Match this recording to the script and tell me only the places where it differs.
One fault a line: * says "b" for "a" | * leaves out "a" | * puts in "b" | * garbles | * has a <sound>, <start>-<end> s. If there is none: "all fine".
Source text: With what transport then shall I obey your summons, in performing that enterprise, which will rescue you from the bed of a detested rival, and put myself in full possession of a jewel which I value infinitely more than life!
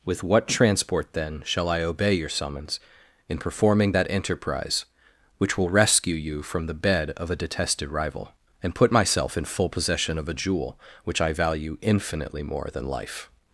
all fine